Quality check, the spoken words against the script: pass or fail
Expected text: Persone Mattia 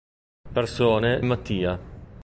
pass